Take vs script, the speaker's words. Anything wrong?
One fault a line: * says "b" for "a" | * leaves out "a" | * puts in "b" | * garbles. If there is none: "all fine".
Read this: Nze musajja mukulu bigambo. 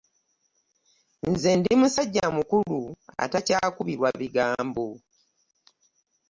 * puts in "ndi"
* puts in "atakyakubirwa"